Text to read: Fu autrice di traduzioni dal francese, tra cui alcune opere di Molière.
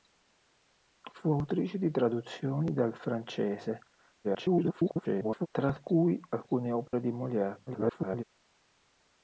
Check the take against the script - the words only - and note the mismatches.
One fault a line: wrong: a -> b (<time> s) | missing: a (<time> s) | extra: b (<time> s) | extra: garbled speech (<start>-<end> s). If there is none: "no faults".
extra: garbled speech (4.2-5.5 s)
extra: garbled speech (7.7-8.2 s)